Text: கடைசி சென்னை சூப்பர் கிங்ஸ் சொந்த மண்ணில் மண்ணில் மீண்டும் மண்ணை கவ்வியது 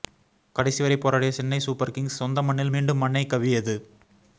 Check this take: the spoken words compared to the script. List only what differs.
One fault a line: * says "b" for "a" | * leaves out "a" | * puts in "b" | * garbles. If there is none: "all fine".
* puts in "வரை போராடிய"
* leaves out "மண்ணில்"